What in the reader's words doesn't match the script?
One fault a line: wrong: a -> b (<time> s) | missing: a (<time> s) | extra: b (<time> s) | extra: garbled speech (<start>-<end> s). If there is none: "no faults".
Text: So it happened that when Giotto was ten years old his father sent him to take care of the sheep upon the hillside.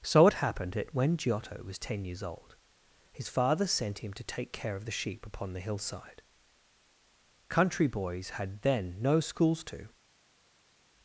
extra: Country boys had then no schools to (7.5 s)